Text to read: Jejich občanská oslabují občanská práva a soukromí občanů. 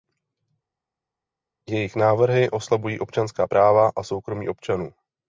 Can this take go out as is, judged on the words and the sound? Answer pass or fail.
fail